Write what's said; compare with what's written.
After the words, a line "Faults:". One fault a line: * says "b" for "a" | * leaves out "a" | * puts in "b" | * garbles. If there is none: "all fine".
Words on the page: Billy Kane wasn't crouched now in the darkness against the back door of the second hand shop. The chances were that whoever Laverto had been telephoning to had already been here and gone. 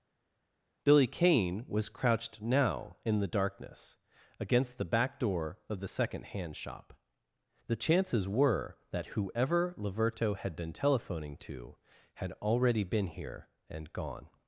Billy Kane was crouched now in the darkness against the back door of the second hand shop. The chances were that whoever Laverto had been telephoning to had already been here and gone.
Faults:
* says "was" for "wasn't"